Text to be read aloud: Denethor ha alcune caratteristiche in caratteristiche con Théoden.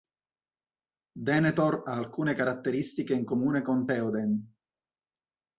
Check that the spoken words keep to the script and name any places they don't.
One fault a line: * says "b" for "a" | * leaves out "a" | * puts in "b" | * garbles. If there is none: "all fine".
* says "comune" for "caratteristiche"